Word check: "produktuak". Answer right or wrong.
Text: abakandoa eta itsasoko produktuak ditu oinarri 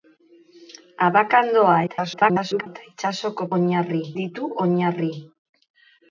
wrong